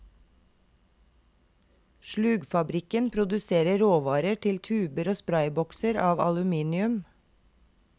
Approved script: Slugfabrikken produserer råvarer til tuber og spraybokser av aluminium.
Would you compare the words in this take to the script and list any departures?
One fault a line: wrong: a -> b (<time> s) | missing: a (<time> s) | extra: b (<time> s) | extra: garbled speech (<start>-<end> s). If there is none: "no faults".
no faults